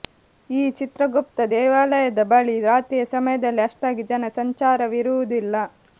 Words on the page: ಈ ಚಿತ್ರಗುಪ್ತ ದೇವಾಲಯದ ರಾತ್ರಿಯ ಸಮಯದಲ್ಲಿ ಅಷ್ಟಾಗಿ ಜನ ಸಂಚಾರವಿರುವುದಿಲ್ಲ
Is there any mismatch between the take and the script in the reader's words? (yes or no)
yes